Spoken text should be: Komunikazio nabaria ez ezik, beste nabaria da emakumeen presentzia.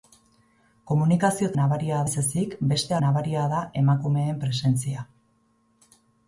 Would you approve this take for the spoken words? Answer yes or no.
yes